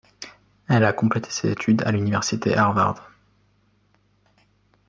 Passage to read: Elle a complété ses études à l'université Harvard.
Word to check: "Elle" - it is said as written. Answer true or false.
true